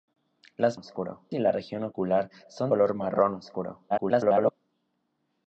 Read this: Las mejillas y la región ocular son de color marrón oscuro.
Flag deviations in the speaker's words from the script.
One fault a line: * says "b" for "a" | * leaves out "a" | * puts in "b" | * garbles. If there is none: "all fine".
* says "oscuro" for "mejillas"
* leaves out "de"
* garbles